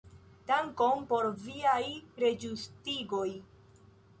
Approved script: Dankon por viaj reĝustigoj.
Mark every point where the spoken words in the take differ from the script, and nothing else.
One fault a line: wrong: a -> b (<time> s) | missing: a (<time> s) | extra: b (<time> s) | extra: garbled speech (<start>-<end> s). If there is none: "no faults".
no faults